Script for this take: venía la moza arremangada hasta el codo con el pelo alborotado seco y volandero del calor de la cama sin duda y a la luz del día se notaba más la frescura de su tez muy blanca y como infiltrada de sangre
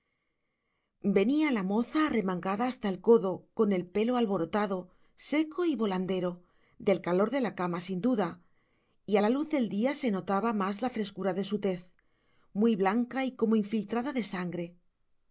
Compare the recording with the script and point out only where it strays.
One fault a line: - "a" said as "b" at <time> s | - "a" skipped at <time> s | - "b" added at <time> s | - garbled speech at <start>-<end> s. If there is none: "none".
none